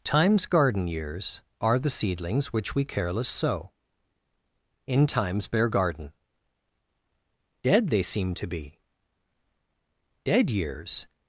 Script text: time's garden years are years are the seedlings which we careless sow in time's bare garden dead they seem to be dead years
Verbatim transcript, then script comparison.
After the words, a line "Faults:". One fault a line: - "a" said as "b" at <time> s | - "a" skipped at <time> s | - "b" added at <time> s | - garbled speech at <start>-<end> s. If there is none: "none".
time's garden years are the seedlings which we careless sow in time's bare garden dead they seem to be dead years
Faults:
- "years are" skipped at 1.8 s